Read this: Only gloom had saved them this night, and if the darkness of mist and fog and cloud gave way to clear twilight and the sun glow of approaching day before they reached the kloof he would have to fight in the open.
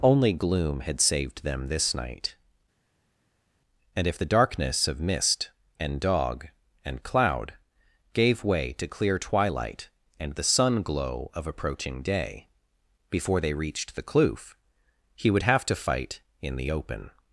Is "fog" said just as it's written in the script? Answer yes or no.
no